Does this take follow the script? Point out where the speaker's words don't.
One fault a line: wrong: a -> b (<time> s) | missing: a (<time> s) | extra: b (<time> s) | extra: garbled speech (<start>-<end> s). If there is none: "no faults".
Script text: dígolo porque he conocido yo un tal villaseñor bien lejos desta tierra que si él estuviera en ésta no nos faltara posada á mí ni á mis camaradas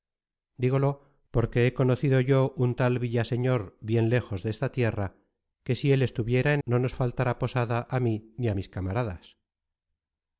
missing: ésta (6.6 s)